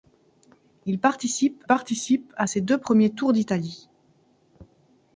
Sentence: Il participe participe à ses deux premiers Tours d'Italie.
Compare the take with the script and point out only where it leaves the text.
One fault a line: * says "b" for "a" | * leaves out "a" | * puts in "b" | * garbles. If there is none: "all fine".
all fine